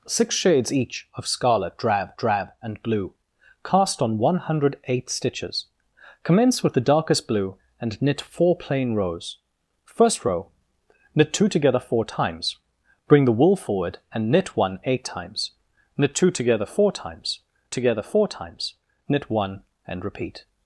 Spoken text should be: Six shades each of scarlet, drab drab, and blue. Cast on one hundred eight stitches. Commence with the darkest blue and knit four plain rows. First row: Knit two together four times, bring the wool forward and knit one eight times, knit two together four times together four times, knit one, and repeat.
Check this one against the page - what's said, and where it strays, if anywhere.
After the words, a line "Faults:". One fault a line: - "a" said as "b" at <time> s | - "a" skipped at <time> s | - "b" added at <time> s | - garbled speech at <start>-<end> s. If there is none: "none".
Six shades each of scarlet, drab drab, and blue. Cast on one hundred eight stitches. Commence with the darkest blue and knit four plain rows. First row: Knit two together four times, bring the wool forward and knit one eight times, knit two together four times together four times, knit one, and repeat.
Faults:
none